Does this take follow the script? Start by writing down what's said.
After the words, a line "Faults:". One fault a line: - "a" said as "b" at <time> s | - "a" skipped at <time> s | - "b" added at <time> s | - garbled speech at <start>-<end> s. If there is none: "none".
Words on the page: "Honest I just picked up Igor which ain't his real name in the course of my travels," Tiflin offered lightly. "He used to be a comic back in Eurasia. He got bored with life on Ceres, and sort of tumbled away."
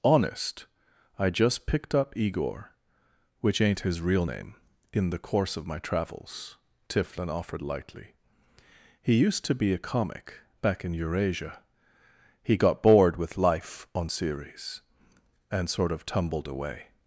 "Honest I just picked up Igor which ain't his real name in the course of my travels," Tiflin offered lightly. "He used to be a comic back in Eurasia. He got bored with life on Ceres, and sort of tumbled away."
Faults:
none